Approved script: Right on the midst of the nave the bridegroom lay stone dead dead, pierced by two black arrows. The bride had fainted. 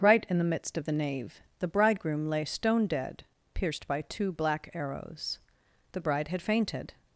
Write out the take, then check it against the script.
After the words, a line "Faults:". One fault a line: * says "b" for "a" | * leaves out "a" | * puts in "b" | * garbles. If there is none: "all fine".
Right in the midst of the nave the bridegroom lay stone dead, pierced by two black arrows. The bride had fainted.
Faults:
* says "in" for "on"
* leaves out "dead"